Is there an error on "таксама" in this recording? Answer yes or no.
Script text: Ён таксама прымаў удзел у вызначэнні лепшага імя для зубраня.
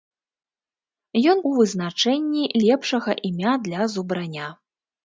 yes